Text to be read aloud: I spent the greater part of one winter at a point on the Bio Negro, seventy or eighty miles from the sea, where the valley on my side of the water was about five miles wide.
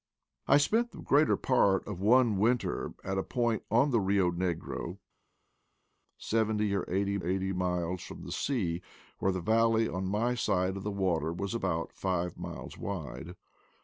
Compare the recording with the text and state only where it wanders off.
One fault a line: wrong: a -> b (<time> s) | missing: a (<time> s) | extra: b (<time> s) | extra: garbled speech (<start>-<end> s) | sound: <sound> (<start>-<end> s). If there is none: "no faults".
extra: eighty (7.2 s)